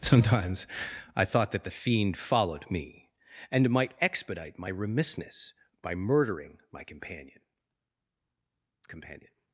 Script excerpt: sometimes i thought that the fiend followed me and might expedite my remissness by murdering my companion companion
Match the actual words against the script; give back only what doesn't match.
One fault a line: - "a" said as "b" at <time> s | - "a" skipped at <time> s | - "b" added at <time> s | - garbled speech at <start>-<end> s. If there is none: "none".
none